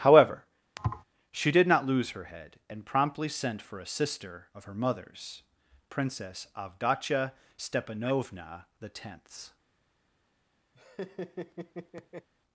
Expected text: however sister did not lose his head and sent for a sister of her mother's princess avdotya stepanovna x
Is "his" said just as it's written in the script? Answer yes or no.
no